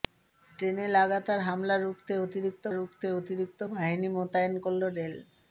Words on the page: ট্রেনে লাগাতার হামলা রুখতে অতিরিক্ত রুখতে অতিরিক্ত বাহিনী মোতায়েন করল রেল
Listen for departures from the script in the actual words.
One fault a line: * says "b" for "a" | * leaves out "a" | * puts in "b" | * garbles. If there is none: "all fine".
all fine